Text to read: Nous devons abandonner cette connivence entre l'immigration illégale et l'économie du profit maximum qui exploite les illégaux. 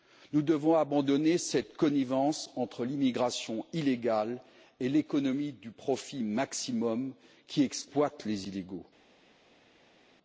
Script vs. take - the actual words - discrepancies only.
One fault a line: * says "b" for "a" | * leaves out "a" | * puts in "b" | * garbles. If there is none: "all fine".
all fine